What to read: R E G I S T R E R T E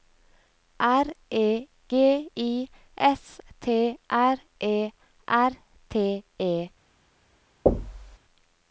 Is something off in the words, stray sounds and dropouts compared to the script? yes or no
yes